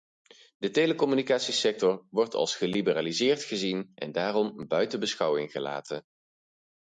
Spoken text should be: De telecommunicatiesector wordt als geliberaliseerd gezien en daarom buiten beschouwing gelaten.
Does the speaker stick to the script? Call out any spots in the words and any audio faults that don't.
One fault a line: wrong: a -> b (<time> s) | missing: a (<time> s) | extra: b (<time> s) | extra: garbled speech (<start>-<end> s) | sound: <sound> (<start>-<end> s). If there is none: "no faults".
no faults